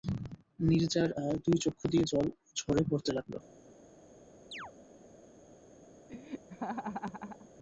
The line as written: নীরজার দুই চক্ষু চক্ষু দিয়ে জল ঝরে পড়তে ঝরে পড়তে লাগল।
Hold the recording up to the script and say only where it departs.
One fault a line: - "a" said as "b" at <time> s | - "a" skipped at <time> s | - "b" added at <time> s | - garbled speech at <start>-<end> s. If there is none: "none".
- "চক্ষু" skipped at 1.8 s
- "ঝরে পড়তে" skipped at 3.1 s